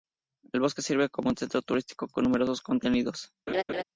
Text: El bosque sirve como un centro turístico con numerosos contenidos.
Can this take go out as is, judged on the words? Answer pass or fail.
pass